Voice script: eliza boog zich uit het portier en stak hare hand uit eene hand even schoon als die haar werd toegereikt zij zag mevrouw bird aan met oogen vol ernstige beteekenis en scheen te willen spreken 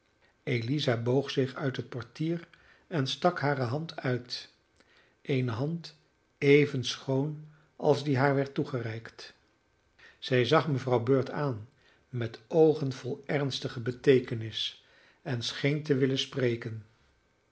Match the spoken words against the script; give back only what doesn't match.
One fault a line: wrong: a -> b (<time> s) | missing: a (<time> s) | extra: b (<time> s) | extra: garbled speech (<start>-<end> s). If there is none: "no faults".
no faults